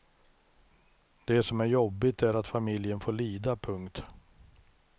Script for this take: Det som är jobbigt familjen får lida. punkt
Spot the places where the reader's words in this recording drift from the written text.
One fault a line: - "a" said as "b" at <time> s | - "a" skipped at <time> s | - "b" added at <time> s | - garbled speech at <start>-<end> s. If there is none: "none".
- "är att" added at 2.2 s